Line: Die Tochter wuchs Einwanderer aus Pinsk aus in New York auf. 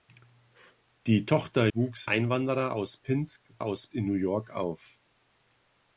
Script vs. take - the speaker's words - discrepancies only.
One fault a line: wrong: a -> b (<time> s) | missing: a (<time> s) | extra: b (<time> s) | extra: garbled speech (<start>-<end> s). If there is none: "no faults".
no faults